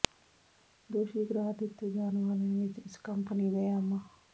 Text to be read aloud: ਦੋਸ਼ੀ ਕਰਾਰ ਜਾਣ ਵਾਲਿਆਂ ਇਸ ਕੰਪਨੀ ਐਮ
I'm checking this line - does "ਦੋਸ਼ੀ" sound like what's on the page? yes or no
yes